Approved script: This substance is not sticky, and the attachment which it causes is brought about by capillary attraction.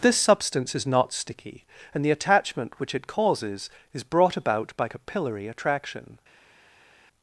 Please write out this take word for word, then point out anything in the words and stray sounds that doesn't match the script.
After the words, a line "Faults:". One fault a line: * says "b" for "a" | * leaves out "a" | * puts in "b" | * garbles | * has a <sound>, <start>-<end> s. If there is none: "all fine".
This substance is not sticky, and the attachment which it causes is brought about by capillary attraction.
Faults:
all fine